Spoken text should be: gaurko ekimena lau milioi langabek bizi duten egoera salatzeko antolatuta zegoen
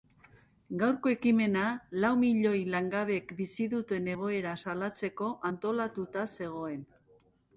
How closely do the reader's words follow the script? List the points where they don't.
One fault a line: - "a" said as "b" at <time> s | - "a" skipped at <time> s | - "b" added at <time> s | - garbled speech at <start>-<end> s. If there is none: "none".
none